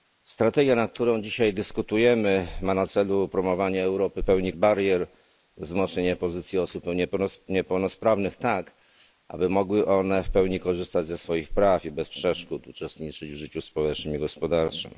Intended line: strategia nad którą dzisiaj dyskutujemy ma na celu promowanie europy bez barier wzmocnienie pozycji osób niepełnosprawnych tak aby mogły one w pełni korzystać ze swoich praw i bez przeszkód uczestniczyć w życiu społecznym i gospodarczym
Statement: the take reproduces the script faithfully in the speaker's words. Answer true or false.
false